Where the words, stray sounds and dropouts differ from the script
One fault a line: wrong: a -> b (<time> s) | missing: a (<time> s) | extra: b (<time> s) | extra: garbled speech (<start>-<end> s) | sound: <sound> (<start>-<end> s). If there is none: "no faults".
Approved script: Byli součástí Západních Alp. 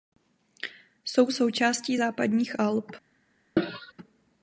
wrong: Byli -> Jsou (1.1 s)
sound: cough (3.6-3.9 s)